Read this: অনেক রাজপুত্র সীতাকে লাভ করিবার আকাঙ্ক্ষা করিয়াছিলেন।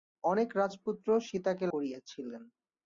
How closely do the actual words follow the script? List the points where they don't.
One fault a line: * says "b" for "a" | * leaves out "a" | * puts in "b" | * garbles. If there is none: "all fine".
* leaves out "লাভ করিবার আকাঙ্ক্ষা"